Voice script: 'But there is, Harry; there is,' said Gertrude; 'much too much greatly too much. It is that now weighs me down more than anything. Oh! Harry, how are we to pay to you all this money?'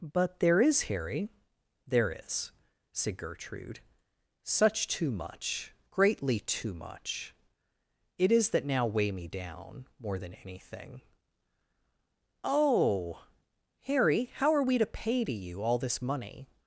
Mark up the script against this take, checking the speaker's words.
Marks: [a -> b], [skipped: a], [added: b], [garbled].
'But there is, Harry; there is,' said Gertrude; ['much -> such] too much greatly too much. It is that now [weighs -> weigh] me down more than anything. Oh! Harry, how are we to pay to you all this money?'